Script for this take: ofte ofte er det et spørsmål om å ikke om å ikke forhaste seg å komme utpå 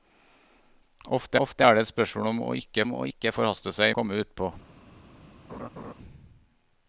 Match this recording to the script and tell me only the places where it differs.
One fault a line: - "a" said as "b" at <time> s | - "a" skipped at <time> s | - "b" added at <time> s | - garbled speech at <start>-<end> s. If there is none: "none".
none